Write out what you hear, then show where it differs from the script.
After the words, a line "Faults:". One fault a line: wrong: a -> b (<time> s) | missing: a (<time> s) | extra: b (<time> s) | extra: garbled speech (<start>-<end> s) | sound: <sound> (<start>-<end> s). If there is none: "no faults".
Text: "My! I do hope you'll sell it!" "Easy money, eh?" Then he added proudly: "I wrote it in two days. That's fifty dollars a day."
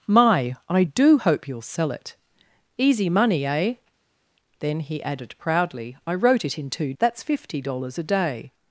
"My! I do hope you'll sell it!" "Easy money, eh?" Then he added proudly: "I wrote it in two. That's fifty dollars a day."
Faults:
missing: days (6.9 s)